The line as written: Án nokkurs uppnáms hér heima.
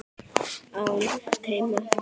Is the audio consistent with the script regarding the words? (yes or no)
no